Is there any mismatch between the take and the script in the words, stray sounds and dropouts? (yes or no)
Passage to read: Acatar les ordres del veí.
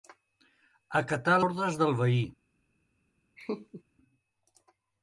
yes